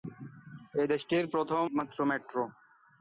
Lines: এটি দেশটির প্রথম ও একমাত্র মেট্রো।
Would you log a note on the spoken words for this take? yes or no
yes